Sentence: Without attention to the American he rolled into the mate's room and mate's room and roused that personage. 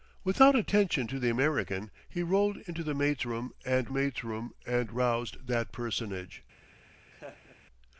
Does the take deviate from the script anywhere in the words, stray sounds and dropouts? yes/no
yes